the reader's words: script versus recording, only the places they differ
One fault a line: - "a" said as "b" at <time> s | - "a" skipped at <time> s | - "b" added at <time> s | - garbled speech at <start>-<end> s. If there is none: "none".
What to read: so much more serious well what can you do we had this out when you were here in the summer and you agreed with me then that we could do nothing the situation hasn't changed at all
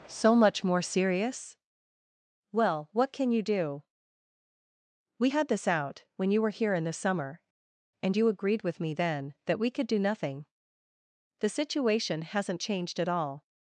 none